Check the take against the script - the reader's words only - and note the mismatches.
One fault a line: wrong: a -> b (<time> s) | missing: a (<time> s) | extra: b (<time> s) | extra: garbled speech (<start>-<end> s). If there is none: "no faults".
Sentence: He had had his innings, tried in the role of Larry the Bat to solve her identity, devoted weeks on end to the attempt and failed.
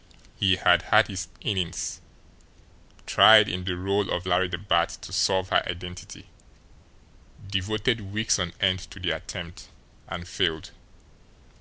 no faults